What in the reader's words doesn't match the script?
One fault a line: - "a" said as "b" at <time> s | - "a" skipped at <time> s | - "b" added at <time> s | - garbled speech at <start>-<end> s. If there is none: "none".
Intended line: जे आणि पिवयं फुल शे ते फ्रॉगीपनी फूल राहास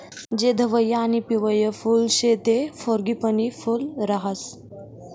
- "धवयं" added at 0.5 s